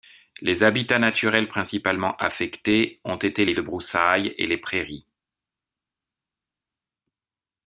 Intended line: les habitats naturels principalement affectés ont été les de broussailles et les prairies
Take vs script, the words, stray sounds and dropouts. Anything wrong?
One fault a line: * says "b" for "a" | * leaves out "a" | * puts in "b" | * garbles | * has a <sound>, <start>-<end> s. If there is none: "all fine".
all fine